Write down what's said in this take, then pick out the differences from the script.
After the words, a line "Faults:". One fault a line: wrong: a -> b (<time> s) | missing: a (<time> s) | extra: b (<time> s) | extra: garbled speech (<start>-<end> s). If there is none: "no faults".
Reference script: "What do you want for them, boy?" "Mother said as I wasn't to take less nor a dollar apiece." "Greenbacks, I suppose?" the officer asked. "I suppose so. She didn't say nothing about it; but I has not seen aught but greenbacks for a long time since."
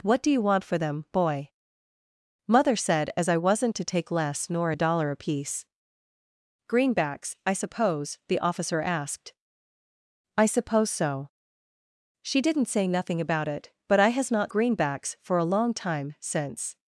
"What do you want for them, boy?" "Mother said as I wasn't to take less nor a dollar apiece." "Greenbacks, I suppose?" the officer asked. "I suppose so. She didn't say nothing about it; but I has not greenbacks for a long time since."
Faults:
missing: seen aught but (14.5 s)